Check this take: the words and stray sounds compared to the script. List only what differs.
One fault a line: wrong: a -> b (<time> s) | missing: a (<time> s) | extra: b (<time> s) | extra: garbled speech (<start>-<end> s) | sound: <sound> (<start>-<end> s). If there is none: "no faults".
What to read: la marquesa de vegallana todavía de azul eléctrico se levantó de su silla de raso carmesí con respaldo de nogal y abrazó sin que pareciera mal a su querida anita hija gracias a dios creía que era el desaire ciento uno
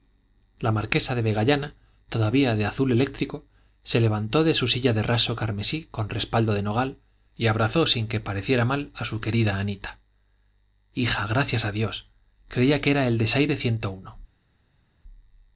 no faults